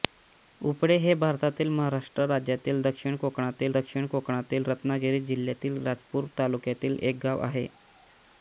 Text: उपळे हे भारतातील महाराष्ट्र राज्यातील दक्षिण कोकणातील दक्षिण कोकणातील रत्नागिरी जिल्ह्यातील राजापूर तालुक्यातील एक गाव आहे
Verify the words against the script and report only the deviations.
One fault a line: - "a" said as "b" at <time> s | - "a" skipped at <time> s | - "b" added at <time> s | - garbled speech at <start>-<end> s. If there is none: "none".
none